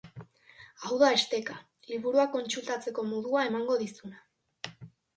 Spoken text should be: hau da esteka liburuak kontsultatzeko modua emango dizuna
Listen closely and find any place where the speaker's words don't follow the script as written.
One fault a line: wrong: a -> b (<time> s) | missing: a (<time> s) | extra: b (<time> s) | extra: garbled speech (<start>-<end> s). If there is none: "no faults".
no faults